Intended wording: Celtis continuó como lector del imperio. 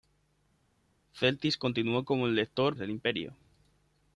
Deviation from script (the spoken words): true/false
false